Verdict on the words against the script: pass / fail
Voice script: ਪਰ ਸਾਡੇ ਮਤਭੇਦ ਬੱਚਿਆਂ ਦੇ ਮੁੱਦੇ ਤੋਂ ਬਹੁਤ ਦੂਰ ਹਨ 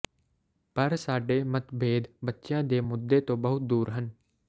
pass